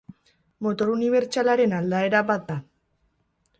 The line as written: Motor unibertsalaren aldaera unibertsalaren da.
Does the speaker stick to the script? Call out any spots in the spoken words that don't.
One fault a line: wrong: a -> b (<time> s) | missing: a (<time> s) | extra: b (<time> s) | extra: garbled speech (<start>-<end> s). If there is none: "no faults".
wrong: unibertsalaren -> bat (2.3 s)